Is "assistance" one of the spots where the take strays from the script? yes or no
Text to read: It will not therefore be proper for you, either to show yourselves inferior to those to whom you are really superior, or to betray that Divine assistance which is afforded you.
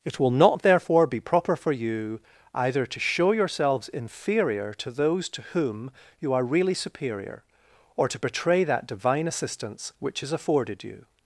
no